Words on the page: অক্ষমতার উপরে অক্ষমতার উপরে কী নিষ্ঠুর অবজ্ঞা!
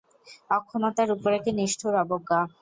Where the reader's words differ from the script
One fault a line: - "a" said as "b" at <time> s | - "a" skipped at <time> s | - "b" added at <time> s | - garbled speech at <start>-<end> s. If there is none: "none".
- "অক্ষমতার উপরে" skipped at 1.4 s